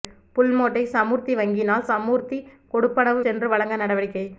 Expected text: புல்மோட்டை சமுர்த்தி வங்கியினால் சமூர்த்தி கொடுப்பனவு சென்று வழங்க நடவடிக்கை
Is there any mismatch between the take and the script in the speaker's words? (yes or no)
no